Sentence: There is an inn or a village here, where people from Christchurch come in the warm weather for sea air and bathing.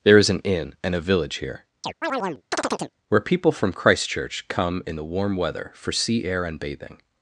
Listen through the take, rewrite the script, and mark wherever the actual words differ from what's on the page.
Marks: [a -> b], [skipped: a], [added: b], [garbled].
There is an inn [or -> and] a village here, where people from Christchurch come in the warm weather for sea air and bathing.